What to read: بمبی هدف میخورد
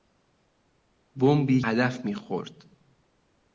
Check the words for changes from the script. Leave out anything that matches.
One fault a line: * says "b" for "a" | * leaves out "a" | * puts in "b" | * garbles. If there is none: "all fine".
all fine